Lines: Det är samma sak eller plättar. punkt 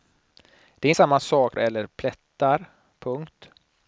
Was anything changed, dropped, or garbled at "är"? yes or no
no